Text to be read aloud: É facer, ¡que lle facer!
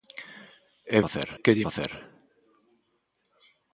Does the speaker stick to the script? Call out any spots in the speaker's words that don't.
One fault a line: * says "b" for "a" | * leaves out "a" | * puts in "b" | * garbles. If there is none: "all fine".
all fine